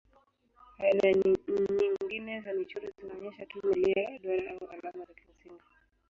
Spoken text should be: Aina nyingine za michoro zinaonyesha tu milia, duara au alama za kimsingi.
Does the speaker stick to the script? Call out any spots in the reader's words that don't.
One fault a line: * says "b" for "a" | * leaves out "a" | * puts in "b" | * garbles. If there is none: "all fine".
all fine